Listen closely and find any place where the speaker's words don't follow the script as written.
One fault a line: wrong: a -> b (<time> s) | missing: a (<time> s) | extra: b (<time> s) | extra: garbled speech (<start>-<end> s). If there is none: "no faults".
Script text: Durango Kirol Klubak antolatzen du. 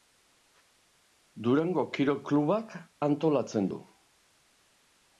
no faults